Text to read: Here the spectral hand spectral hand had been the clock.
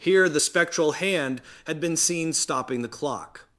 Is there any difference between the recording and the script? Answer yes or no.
yes